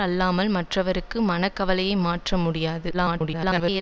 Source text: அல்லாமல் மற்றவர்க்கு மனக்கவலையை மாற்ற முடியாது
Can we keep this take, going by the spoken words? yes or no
no